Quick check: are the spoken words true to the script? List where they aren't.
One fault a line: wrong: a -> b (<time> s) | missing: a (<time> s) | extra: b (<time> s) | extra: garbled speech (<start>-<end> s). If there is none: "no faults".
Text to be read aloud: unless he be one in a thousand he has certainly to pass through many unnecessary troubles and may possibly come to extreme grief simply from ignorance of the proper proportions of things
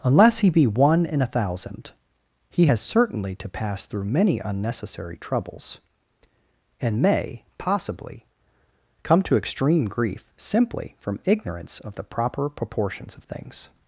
no faults